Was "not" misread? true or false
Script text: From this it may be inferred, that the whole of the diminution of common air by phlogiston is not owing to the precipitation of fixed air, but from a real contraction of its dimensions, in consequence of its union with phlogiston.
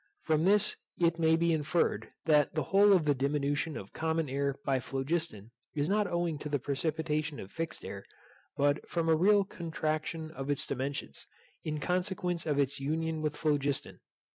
false